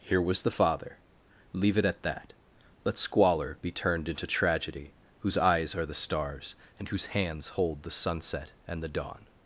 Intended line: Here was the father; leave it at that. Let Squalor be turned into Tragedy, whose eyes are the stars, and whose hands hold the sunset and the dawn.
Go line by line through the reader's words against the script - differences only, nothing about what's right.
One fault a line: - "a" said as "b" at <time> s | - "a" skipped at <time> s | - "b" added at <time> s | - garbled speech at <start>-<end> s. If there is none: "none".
none